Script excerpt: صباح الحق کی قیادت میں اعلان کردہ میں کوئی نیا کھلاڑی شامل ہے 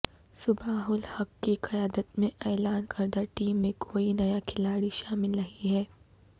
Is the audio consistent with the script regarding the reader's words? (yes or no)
no